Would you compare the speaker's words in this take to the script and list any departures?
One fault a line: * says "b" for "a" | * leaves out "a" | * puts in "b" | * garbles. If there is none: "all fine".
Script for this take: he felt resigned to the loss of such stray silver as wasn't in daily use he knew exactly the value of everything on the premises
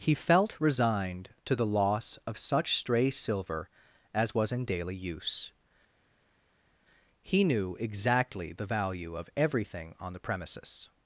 * says "was" for "wasn't"